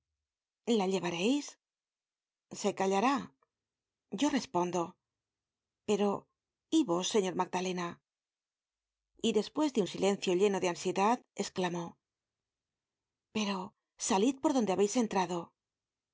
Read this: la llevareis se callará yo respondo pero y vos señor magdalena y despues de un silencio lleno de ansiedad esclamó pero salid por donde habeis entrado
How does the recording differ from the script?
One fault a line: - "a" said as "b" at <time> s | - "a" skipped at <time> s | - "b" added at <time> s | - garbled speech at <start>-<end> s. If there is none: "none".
none